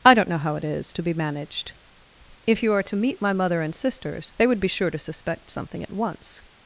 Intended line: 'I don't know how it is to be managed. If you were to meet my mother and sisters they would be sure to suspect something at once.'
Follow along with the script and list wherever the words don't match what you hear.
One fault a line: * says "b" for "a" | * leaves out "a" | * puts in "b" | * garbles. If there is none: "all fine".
* says "are" for "were"